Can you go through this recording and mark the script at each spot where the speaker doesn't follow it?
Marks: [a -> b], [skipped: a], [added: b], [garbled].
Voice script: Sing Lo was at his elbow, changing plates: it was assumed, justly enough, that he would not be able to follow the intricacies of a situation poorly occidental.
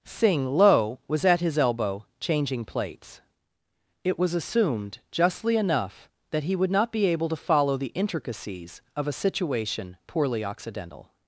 Sing Lo was at his elbow, changing plates: it was assumed, justly enough, that he would not be able to follow the intricacies of a situation poorly occidental.